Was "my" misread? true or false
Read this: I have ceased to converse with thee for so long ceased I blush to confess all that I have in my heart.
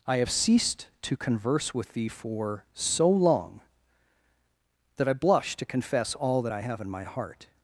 false